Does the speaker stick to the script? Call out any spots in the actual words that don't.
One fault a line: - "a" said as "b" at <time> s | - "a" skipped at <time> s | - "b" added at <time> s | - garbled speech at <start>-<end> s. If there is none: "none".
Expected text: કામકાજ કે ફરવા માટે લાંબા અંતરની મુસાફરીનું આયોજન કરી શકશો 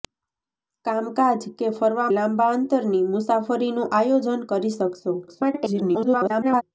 - "માટે" skipped at 2.1 s
- garbled speech at 5.3-6.6 s